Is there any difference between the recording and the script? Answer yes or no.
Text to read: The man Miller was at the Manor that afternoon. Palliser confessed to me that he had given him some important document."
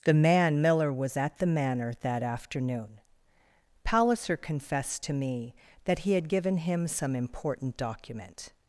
no